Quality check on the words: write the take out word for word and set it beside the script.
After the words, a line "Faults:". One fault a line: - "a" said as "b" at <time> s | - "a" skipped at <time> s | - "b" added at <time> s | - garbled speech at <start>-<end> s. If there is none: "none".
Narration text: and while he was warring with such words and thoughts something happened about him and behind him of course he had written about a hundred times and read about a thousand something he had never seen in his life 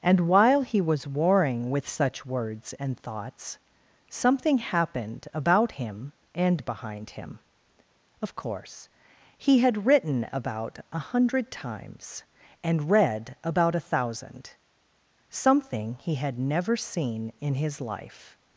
and while he was warring with such words and thoughts something happened about him and behind him of course he had written about a hundred times and read about a thousand something he had never seen in his life
Faults:
none